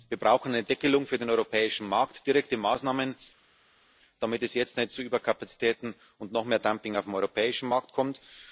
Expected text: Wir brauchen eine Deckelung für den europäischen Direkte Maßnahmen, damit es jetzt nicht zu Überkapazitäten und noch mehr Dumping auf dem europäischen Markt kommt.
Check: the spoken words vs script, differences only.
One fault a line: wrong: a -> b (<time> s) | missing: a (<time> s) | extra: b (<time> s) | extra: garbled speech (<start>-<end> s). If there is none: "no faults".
extra: Markt (1.9 s)